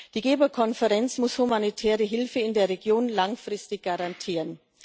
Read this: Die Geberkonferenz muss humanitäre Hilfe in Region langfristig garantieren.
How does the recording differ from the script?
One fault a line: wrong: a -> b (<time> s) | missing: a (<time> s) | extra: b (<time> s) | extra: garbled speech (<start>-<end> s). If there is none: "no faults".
extra: der (2.5 s)